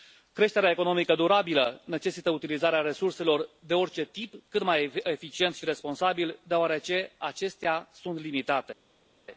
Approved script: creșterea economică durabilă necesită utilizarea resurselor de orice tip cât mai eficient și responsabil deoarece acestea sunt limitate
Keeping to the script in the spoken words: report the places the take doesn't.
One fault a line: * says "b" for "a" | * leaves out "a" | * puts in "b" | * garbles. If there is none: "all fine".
all fine